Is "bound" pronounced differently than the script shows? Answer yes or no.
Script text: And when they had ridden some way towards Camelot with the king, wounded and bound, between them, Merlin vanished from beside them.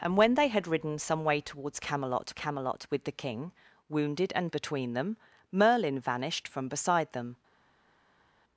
yes